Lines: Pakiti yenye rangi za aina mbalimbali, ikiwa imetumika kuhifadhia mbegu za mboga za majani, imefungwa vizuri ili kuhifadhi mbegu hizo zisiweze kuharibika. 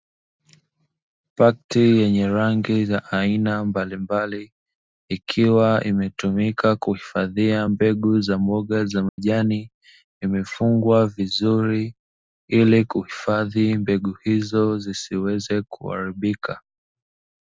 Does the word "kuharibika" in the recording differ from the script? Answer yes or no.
no